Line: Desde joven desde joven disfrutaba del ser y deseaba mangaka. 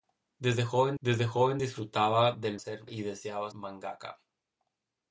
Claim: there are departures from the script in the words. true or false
false